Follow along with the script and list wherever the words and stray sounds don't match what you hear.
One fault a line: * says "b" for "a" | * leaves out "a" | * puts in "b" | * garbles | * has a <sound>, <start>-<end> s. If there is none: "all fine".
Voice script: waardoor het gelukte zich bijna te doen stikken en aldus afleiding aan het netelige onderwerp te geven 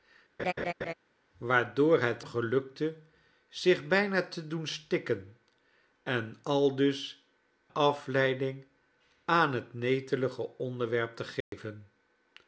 * has a laugh, 0.4-0.9 s
* has a dropout, 11.4-11.5 s